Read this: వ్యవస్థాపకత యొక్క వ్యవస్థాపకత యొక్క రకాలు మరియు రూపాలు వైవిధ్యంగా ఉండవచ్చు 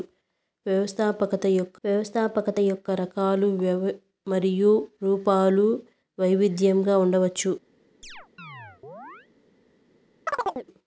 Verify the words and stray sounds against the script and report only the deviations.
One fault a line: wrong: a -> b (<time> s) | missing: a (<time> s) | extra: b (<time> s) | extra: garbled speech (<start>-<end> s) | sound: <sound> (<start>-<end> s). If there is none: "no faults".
sound: chirp (8.0-9.3 s)
sound: chirp (10.3-10.7 s)